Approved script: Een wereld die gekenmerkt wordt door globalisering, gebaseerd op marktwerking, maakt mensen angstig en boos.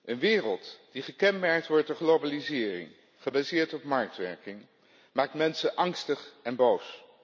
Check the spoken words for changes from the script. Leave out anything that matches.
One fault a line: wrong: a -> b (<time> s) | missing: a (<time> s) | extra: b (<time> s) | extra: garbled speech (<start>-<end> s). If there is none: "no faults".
no faults